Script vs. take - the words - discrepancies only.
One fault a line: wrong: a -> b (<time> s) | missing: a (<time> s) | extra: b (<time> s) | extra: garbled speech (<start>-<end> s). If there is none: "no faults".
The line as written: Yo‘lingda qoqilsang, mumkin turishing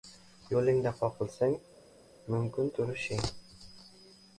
no faults